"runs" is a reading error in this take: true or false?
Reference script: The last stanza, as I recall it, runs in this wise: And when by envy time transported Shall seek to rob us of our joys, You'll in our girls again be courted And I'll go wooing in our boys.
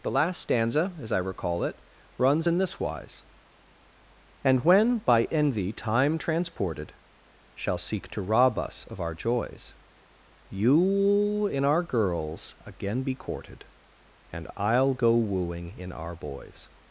false